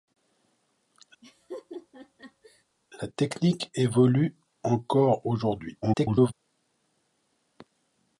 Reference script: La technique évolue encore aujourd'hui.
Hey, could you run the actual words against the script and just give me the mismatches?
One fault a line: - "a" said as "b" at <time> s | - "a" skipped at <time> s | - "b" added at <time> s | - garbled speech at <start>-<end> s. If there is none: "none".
- garbled speech at 5.8-6.3 s